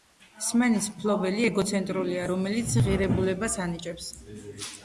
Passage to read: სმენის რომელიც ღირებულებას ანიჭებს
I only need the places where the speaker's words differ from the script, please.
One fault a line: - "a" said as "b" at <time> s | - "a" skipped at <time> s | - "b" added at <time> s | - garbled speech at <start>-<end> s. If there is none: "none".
- "მფლობელი ეგოცენტრულია" added at 0.9 s